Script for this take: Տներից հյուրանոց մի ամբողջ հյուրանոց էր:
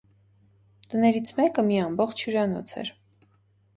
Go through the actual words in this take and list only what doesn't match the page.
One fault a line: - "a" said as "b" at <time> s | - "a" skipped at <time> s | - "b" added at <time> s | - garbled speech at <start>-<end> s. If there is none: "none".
- "հյուրանոց" said as "մեկը" at 1.4 s